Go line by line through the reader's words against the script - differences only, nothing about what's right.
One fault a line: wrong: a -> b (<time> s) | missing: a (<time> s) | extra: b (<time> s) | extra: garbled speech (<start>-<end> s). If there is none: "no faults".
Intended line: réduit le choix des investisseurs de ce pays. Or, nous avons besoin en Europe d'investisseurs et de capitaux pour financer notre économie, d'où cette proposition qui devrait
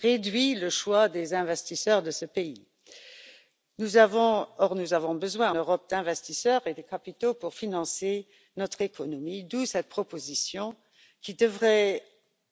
missing: en (5.5 s)